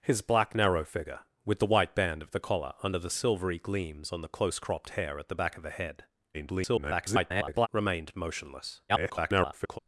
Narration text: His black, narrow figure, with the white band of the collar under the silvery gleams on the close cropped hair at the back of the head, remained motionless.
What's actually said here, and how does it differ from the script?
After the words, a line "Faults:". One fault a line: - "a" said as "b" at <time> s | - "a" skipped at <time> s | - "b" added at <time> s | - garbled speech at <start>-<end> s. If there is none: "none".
His black, narrow figure, with the white band of the collar under the silvery gleams on the close cropped hair at the back of the head, [garbled] remained motionless. [garbled]
Faults:
- garbled speech at 6.3-7.7 s
- garbled speech at 8.9-9.8 s